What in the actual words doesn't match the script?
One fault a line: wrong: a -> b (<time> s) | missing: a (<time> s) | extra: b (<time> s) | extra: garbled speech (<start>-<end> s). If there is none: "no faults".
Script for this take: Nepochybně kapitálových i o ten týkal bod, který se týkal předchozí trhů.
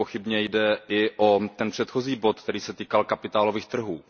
wrong: kapitálových -> jde (0.4 s)
wrong: týkal -> předchozí (1.7 s)
wrong: předchozí -> kapitálových (3.0 s)